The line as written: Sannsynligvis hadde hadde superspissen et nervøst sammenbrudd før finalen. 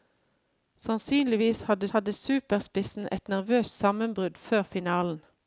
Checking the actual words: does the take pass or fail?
pass